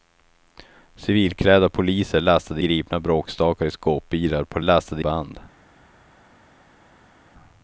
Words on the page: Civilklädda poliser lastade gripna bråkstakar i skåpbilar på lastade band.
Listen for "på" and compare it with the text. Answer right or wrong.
right